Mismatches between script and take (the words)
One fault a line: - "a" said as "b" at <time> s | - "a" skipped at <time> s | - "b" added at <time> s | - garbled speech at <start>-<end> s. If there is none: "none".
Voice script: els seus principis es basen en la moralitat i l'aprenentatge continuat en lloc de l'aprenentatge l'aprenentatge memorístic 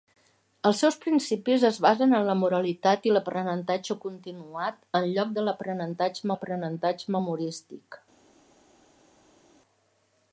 none